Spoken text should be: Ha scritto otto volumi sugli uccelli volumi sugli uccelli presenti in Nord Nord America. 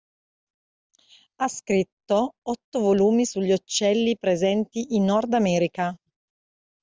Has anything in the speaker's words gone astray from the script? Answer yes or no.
yes